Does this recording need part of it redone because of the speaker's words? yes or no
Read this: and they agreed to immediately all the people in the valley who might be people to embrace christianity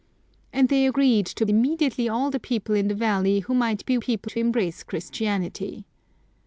no